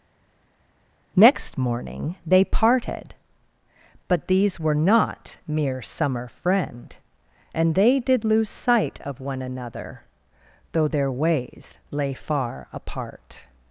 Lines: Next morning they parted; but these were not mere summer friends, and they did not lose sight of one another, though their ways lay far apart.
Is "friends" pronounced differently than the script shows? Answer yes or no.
yes